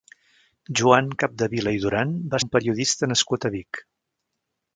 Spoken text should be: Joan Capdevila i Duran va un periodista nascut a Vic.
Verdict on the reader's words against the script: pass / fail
pass